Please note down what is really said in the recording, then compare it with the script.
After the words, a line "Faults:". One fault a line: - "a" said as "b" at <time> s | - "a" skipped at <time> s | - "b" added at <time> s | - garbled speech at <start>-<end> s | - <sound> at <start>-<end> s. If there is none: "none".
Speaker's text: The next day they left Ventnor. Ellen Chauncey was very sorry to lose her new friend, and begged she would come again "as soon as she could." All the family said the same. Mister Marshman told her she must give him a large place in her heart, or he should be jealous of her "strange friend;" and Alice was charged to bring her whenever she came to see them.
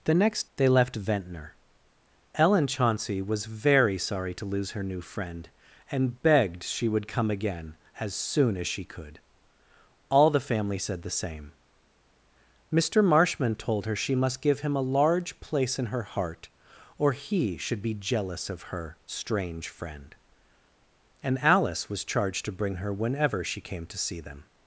The next they left Ventnor. Ellen Chauncey was very sorry to lose her new friend, and begged she would come again "as soon as she could." All the family said the same. Mister Marshman told her she must give him a large place in her heart, or he should be jealous of her "strange friend;" and Alice was charged to bring her whenever she came to see them.
Faults:
- "day" skipped at 0.5 s